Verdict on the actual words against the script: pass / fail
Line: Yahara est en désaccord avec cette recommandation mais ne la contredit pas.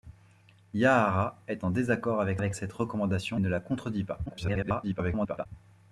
fail